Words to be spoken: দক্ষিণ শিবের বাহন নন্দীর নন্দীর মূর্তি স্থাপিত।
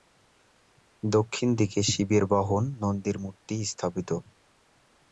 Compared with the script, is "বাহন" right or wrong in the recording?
right